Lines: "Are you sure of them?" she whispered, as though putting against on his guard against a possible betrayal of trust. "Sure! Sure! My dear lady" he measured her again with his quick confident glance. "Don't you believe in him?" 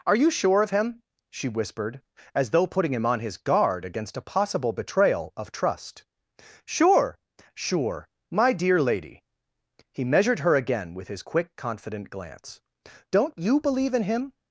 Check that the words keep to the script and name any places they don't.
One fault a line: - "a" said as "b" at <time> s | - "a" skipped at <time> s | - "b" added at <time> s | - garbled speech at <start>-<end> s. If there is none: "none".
- "them" said as "him" at 0.7 s
- "against" said as "him" at 2.9 s